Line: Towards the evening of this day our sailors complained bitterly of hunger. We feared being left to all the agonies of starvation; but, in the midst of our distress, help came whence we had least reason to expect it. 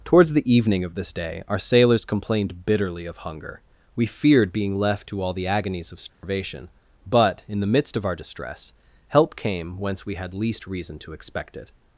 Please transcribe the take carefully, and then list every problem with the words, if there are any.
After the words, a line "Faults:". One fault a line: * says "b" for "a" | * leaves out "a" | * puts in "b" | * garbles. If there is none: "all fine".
Towards the evening of this day our sailors complained bitterly of hunger. We feared being left to all the agonies of starvation; but, in the midst of our distress, help came whence we had least reason to expect it.
Faults:
all fine